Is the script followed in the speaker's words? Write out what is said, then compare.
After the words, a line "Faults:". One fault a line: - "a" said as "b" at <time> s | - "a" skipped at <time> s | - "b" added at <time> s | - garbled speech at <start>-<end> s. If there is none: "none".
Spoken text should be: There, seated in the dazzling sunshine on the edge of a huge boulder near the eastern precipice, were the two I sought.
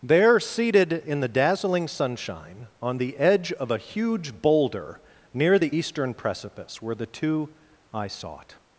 There, seated in the dazzling sunshine on the edge of a huge boulder near the eastern precipice, were the two I sought.
Faults:
none